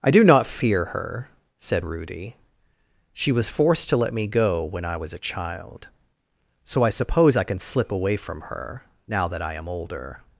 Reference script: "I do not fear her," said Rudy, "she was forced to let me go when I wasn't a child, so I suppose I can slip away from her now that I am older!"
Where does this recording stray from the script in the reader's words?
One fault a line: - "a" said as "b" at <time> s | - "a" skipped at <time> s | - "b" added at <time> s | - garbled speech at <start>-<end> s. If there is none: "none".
- "wasn't" said as "was" at 5.0 s